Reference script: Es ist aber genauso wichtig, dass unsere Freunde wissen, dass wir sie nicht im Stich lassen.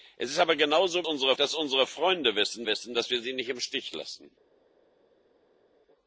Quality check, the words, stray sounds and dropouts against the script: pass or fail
fail